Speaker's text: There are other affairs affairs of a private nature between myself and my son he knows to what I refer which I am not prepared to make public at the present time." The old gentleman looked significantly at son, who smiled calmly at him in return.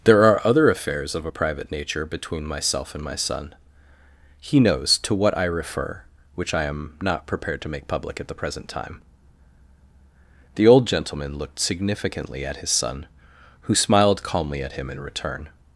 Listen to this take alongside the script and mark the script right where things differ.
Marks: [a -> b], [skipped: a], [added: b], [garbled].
There are other affairs [skipped: affairs] of a private nature between myself and my son he knows to what I refer which I am not prepared to make public at the present time." The old gentleman looked significantly at [added: his] son, who smiled calmly at him in return.